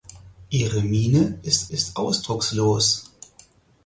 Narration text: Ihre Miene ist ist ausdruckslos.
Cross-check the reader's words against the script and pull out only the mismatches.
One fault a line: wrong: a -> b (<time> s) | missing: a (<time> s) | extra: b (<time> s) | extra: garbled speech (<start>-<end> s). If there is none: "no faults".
no faults